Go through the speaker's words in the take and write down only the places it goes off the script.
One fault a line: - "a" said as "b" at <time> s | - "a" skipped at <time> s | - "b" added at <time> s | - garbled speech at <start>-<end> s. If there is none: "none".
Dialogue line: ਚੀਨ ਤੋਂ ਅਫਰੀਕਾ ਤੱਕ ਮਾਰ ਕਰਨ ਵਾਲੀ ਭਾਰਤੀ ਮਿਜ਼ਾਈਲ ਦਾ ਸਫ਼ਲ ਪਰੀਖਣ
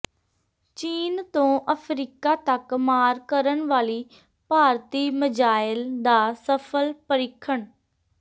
none